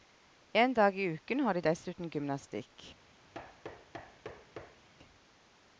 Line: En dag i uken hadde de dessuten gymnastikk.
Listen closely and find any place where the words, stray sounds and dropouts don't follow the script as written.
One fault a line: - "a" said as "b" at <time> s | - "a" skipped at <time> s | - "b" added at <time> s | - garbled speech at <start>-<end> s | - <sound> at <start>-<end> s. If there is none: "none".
- "hadde" said as "har" at 1.4 s
- thud at 3.3-4.9 s